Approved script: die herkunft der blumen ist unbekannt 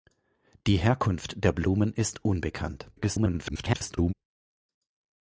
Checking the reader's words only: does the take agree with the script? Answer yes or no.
no